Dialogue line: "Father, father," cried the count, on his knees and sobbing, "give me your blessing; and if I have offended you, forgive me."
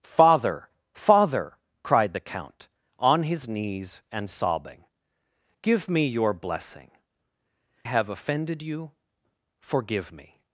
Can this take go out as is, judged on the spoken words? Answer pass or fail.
fail